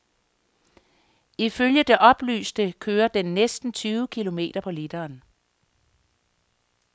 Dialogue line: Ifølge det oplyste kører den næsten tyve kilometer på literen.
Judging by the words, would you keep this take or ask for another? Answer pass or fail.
pass